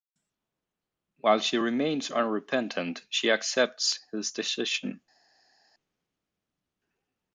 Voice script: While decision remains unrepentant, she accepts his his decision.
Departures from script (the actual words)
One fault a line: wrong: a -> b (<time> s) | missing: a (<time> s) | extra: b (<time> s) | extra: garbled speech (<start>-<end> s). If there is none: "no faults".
wrong: decision -> she (1.4 s)
missing: his (4.3 s)